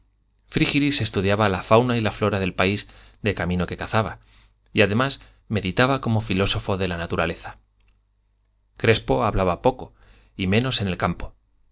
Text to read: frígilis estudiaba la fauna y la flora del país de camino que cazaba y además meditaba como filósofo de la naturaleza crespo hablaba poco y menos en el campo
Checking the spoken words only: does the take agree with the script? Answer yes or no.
yes